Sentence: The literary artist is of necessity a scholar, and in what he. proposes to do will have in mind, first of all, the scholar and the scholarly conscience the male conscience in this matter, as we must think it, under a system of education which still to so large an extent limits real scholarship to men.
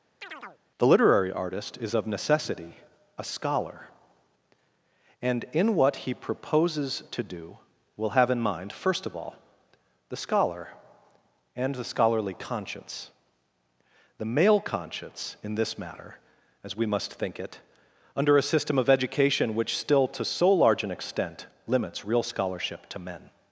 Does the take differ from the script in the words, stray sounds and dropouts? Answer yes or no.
yes